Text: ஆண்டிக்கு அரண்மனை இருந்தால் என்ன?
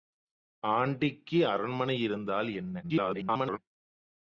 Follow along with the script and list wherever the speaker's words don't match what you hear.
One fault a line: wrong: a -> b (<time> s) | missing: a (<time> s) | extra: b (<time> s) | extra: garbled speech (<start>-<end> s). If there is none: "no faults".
extra: garbled speech (2.8-3.6 s)